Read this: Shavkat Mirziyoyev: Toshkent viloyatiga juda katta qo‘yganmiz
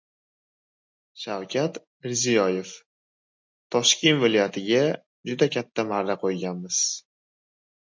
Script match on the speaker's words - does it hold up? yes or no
no